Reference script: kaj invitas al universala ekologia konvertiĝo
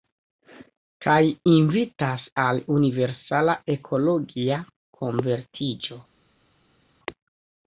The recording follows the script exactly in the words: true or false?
true